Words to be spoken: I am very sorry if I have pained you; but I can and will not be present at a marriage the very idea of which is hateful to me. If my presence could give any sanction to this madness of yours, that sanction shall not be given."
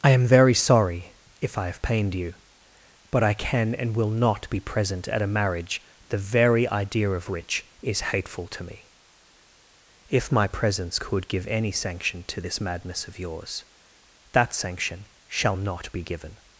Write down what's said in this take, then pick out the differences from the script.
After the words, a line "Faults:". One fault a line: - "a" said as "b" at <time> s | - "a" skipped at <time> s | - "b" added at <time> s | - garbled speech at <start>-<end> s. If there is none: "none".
I am very sorry if I have pained you; but I can and will not be present at a marriage the very idea of which is hateful to me. If my presence could give any sanction to this madness of yours, that sanction shall not be given."
Faults:
none